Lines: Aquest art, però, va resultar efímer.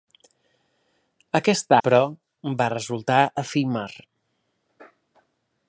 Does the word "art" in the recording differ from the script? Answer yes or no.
yes